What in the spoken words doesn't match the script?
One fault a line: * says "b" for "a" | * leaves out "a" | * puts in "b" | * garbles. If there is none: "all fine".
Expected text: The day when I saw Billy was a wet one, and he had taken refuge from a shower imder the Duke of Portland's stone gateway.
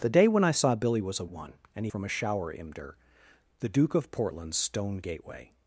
* leaves out "wet"
* leaves out "had taken refuge"